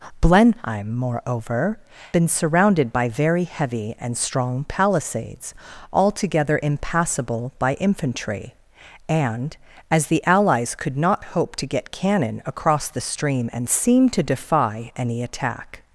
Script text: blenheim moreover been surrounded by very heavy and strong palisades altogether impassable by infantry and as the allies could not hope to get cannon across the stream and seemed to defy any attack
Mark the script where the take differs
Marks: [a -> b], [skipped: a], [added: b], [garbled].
blenheim moreover been surrounded by very heavy and strong palisades altogether impassable by infantry and as the allies could not hope to get cannon across the stream and seemed to defy any attack